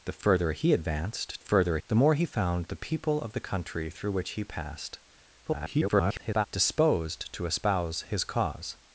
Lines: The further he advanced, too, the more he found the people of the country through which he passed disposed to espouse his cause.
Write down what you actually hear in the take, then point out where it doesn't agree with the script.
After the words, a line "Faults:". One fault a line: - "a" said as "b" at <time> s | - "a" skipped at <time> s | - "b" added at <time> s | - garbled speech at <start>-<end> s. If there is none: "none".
The further he advanced, further, the more he found the people of the country through which he passed [garbled] disposed to espouse his cause.
Faults:
- "too" said as "further" at 1.4 s
- garbled speech at 5.5-6.5 s